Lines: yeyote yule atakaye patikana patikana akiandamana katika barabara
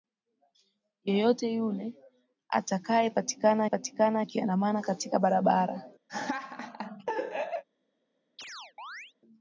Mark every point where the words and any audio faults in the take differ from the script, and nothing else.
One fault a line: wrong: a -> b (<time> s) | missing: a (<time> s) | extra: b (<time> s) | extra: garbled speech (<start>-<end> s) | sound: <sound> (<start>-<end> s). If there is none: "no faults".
sound: laugh (6.1-7.6 s)
sound: chirp (8.4-9.1 s)